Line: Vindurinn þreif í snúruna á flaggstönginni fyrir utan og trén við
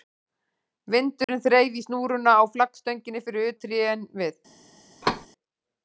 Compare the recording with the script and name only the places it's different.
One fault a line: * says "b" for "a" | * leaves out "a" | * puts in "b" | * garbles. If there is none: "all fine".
* leaves out "utan"